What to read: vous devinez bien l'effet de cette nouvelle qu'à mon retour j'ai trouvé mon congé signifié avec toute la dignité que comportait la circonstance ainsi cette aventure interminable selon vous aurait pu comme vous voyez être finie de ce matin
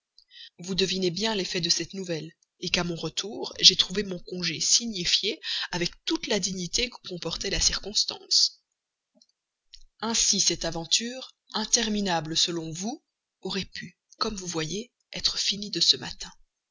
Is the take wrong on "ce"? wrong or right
right